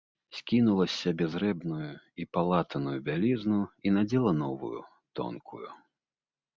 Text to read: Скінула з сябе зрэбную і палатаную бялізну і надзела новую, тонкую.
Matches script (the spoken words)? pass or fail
pass